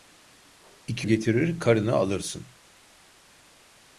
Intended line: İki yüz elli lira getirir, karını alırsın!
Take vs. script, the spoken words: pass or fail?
fail